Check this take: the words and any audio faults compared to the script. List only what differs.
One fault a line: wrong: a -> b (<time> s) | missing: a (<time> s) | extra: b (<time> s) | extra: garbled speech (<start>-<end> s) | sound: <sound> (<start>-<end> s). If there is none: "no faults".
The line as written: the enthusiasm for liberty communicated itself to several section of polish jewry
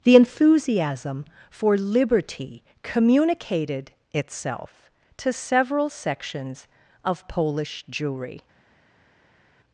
wrong: section -> sections (5.9 s)